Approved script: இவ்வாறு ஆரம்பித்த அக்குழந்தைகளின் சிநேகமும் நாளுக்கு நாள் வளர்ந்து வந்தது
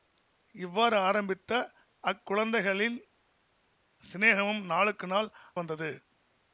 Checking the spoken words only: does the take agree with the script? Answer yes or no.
no